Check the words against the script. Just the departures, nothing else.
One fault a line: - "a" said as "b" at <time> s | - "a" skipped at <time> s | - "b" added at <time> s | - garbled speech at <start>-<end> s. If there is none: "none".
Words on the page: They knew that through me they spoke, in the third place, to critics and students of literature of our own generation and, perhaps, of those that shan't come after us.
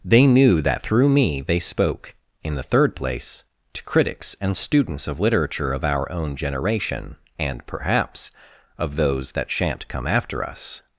none